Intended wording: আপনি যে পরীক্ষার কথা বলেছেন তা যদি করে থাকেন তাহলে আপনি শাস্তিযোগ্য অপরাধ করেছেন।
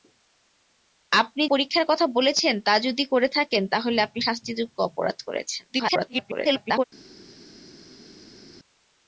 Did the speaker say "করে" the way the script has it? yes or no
yes